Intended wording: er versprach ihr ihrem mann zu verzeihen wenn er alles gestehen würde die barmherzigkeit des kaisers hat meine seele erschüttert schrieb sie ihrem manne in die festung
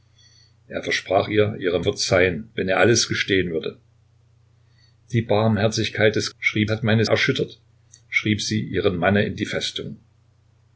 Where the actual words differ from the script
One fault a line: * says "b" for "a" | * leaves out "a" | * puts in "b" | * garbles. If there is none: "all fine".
* leaves out "mann zu"
* says "schrieb" for "kaisers"
* leaves out "seele"